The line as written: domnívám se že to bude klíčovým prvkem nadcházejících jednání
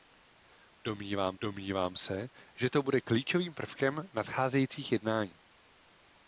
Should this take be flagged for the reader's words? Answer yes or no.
yes